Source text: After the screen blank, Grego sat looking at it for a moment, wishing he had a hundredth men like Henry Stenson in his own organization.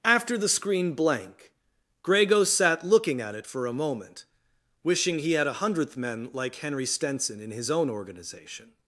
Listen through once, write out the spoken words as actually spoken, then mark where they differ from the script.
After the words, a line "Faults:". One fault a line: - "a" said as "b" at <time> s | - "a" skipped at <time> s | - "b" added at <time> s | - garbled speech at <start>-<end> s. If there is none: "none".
After the screen blank, Grego sat looking at it for a moment, wishing he had a hundredth men like Henry Stenson in his own organization.
Faults:
none